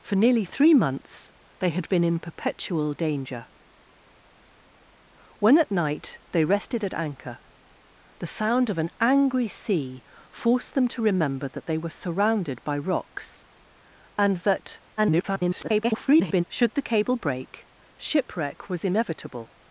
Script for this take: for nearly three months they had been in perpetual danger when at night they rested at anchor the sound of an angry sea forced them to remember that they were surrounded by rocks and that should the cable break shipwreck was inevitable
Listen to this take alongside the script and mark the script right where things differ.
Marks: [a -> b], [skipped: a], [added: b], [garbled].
for nearly three months they had been in perpetual danger when at night they rested at anchor the sound of an angry sea forced them to remember that they were surrounded by rocks and that [garbled] should the cable break shipwreck was inevitable